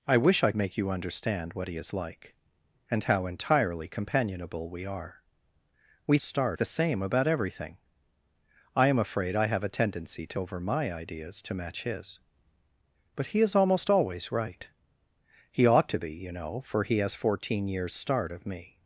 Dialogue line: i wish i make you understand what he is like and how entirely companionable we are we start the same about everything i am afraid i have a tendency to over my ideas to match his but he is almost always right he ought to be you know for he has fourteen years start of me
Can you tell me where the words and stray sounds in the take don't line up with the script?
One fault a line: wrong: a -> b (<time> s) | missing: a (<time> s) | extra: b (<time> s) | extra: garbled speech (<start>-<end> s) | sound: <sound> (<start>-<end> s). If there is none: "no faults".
no faults